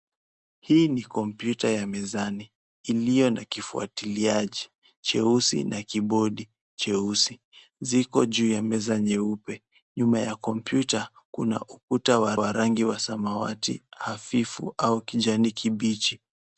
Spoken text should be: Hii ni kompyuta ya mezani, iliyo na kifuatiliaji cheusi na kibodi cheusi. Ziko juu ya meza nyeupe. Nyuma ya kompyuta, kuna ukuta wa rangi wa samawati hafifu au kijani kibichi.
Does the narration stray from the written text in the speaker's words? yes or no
yes